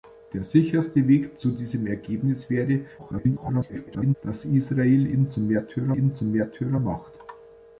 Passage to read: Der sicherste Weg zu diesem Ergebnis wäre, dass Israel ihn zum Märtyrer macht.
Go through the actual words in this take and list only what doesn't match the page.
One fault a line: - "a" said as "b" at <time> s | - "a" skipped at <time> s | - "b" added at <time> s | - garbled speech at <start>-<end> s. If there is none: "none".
- garbled speech at 3.0-4.2 s
- "ihn zum Märtyrer" added at 5.9 s